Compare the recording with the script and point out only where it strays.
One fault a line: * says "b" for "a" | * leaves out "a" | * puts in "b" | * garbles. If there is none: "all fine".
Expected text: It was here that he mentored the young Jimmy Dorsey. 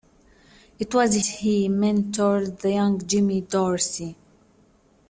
* leaves out "here that"